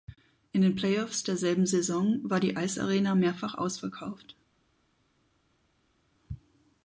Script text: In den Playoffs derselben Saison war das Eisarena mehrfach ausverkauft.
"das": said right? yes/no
no